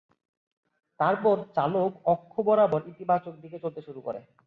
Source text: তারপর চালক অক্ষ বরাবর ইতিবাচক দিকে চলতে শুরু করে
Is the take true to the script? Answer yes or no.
yes